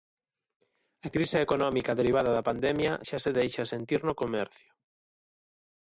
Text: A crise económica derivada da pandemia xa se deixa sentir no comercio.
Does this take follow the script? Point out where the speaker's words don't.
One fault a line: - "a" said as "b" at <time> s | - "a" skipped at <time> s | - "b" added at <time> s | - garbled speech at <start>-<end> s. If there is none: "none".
none